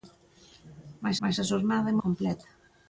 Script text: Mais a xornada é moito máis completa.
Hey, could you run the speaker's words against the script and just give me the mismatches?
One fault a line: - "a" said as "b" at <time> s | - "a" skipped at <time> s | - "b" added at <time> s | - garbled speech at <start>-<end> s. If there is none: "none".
- "mais" added at 1.2 s
- "moito máis" skipped at 2.0 s